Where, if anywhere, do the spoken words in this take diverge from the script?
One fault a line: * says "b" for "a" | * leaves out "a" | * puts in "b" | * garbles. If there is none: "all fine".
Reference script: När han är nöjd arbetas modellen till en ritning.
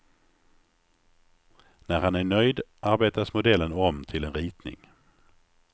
* puts in "om"